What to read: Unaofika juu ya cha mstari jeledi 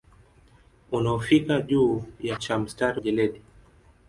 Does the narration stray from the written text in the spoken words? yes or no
no